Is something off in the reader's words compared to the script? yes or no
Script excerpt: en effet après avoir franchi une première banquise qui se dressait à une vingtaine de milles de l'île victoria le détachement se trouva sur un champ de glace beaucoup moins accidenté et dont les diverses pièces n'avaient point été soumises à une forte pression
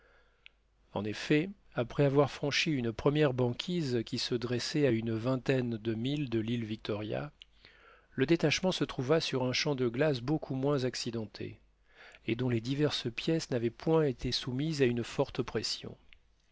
no